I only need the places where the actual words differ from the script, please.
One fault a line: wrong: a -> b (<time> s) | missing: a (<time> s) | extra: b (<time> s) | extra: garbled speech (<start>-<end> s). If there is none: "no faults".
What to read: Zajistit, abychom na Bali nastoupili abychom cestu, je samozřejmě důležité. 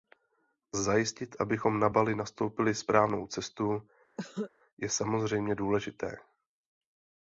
wrong: abychom -> správnou (2.7 s)